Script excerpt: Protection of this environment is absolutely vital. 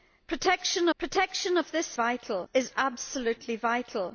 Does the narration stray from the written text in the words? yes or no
yes